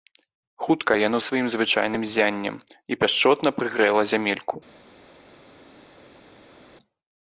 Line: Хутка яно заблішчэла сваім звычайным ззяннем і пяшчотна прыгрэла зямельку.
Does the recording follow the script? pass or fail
fail